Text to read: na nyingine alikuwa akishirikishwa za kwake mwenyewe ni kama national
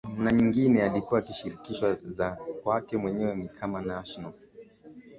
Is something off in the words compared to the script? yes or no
no